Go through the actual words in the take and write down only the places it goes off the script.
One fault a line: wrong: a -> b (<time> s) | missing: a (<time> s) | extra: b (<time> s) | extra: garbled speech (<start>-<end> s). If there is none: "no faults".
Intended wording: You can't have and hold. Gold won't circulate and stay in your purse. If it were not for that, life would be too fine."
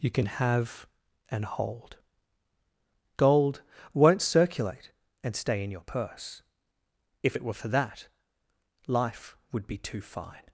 wrong: can't -> can (0.1 s)
missing: not (7.5 s)